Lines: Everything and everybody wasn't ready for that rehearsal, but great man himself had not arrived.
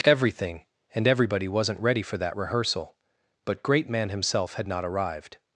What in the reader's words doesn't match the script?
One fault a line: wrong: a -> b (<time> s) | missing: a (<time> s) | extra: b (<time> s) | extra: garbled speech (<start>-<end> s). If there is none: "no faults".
no faults